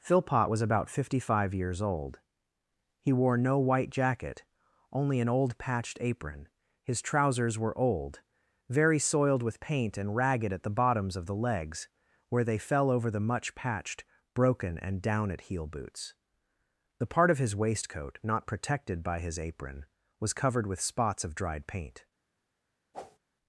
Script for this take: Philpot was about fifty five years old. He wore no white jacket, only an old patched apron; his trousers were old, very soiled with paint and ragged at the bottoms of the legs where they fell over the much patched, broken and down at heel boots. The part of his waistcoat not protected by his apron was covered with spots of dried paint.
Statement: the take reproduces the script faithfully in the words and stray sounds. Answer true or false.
false